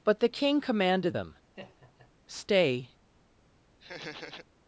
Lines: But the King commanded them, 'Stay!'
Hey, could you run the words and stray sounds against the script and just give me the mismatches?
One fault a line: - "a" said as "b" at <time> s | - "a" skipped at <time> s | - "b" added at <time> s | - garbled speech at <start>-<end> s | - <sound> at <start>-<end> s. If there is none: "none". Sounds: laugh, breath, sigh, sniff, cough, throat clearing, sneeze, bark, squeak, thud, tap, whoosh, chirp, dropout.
- laugh at 1.5-2.1 s
- laugh at 3.8-4.5 s